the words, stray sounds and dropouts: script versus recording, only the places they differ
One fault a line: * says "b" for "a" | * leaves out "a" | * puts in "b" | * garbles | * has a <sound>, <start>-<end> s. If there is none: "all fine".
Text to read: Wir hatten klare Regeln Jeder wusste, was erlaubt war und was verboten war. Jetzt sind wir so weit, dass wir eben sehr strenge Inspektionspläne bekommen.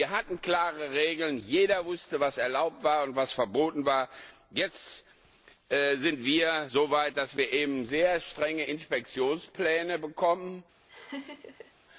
* has a laugh, 10.9-11.7 s